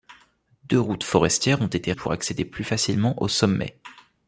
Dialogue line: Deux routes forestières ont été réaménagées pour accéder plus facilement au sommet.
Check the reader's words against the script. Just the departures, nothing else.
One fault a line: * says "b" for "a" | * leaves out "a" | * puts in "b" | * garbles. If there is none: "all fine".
* leaves out "réaménagées"